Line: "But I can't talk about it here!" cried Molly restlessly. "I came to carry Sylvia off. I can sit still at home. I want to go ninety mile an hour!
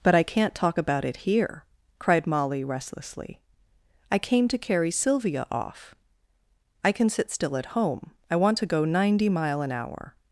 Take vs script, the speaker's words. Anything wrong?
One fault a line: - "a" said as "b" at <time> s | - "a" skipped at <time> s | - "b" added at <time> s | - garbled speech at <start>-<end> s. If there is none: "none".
none